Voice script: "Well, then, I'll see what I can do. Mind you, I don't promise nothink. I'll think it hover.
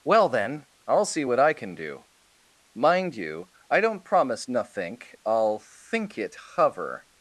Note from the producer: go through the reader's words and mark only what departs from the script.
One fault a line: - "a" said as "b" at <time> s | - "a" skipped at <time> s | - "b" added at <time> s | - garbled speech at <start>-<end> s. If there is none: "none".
none